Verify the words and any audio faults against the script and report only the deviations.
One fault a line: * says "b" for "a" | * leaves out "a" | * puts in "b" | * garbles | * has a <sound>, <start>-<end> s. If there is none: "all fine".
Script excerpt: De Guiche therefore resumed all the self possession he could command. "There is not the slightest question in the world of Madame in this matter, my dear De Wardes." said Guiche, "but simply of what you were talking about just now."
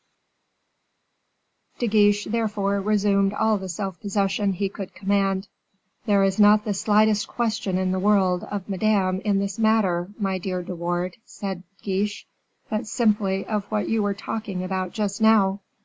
all fine